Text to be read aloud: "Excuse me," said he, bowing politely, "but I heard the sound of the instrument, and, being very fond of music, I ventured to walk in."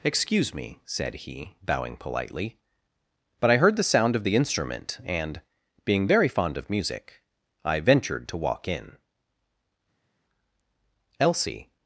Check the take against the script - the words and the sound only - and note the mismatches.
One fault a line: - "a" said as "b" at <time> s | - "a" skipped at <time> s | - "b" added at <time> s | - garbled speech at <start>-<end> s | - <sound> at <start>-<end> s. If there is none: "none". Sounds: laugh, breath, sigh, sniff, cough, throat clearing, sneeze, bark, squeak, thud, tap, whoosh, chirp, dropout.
- "Elsie" added at 11.2 s